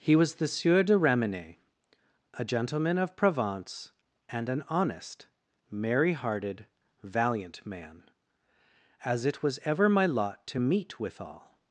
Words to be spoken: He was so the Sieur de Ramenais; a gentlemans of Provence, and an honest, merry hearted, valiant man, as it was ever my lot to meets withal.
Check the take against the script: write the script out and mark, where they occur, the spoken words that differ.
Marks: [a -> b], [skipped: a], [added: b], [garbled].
He was [skipped: so] the Sieur de Ramenais; a [gentlemans -> gentleman] of Provence, and an honest, merry hearted, valiant man, as it was ever my lot to [meets -> meet] withal.